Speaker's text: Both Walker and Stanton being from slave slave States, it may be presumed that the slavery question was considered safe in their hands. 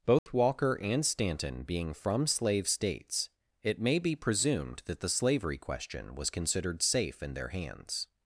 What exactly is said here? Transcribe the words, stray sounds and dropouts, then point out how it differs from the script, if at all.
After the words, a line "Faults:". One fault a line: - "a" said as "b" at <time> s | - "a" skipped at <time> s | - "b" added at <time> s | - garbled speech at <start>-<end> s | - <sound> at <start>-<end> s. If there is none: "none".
Both Walker and Stanton being from slave States, it may be presumed that the slavery question was considered safe in their hands.
Faults:
- dropout at 0.2-0.3 s
- "slave" skipped at 2.7 s